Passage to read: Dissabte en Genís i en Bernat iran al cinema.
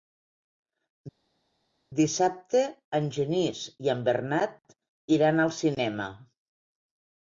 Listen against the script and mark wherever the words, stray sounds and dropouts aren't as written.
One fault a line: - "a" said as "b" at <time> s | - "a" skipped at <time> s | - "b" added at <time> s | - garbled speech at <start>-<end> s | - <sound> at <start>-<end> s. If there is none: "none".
none